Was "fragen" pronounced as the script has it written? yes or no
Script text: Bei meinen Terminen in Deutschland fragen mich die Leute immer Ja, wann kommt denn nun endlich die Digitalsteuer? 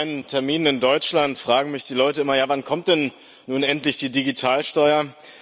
yes